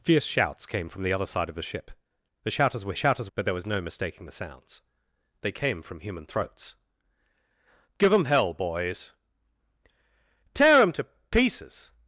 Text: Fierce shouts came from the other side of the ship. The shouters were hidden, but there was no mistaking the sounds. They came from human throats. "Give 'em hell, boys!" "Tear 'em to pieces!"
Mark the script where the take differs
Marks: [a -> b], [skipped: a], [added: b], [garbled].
Fierce shouts came from the other side of the ship. The shouters were [hidden, -> shouters] but there was no mistaking the sounds. They came from human throats. "Give 'em hell, boys!" "Tear 'em to pieces!"